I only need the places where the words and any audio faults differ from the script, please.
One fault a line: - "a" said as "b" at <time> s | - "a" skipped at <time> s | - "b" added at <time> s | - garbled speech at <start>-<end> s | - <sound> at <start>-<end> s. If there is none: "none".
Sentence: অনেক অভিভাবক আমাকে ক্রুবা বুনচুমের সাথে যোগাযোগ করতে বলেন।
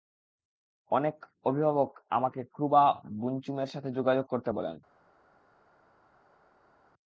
none